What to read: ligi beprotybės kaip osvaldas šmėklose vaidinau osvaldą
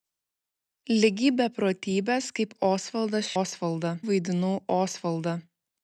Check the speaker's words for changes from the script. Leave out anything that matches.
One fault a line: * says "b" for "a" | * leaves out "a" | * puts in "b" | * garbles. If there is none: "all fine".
* says "osvaldą" for "šmėklose"